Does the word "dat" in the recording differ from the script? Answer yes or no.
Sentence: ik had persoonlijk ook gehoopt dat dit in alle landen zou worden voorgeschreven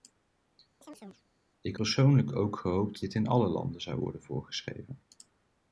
yes